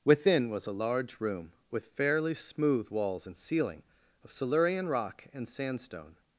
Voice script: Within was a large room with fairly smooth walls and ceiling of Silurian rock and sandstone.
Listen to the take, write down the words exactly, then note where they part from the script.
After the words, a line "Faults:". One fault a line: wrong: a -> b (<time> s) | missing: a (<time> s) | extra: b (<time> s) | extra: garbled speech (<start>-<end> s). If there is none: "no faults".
Within was a large room with fairly smooth walls and ceiling of Silurian rock and sandstone.
Faults:
no faults